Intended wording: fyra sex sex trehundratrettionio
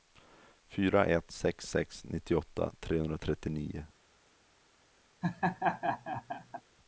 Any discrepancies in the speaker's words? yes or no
yes